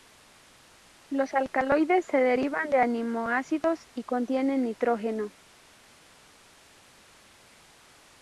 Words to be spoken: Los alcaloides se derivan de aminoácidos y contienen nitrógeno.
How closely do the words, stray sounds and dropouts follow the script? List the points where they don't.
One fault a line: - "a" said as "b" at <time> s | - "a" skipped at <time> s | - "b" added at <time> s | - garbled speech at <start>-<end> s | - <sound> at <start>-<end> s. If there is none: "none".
none